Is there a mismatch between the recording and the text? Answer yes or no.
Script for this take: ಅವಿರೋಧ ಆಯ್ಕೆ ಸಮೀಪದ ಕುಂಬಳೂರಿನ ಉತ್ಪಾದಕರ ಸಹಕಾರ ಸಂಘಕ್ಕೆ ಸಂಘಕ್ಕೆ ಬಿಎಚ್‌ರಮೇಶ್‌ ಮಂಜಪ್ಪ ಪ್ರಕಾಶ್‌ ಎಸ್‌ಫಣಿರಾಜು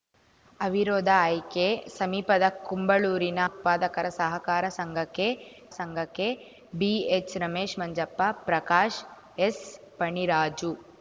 no